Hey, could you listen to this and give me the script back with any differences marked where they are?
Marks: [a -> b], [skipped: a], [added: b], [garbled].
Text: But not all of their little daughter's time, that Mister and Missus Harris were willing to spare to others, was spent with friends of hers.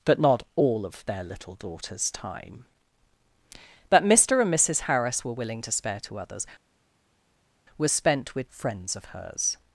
But not all of their little daughter's time, that Mister and Missus Harris were willing to spare to others, was spent with friends of hers.